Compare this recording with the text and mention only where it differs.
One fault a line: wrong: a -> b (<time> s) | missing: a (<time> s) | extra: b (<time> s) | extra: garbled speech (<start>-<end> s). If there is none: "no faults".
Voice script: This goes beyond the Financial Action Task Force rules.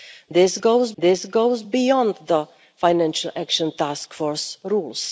extra: this goes (1.0 s)